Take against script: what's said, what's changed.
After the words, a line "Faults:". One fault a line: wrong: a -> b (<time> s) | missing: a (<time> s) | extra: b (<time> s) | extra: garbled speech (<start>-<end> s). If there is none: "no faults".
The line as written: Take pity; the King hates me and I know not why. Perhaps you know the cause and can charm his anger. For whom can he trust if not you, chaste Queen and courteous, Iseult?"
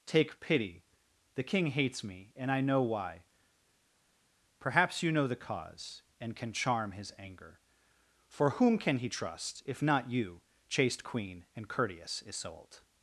Take pity; the King hates me and I know why. Perhaps you know the cause and can charm his anger. For whom can he trust if not you, chaste Queen and courteous, Iseult?"
Faults:
missing: not (2.8 s)